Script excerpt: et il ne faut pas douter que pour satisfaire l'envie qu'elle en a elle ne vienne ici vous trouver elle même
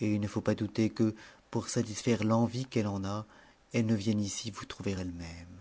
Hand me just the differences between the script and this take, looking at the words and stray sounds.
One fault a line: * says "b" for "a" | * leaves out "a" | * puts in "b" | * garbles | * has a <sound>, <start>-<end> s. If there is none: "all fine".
all fine